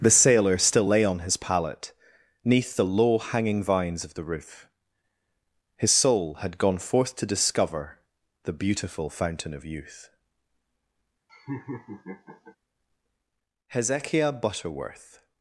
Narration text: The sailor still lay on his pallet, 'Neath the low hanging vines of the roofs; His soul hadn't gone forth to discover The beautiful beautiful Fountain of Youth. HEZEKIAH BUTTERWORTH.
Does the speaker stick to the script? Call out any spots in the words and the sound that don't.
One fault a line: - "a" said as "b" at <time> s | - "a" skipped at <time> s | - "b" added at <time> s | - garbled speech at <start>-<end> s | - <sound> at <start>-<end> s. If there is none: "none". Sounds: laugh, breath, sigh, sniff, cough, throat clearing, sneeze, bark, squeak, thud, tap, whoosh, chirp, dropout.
- "roofs" said as "roof" at 4.2 s
- "hadn't" said as "had" at 6.4 s
- "beautiful" skipped at 9.1 s
- laugh at 11.3-12.6 s